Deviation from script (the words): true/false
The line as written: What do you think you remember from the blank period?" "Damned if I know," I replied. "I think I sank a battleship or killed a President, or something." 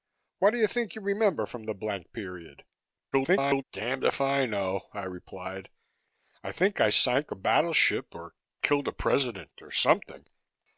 true